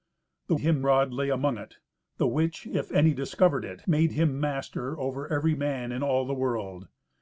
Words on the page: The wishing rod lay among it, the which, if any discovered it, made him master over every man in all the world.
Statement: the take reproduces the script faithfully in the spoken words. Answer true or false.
false